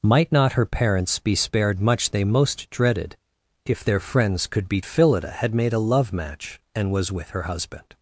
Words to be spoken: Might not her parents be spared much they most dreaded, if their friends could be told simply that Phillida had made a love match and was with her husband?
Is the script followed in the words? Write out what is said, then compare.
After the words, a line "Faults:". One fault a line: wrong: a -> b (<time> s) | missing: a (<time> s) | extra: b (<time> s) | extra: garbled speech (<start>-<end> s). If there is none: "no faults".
Might not her parents be spared much they most dreaded, if their friends could be Phillida had made a love match and was with her husband?
Faults:
missing: told simply that (4.8 s)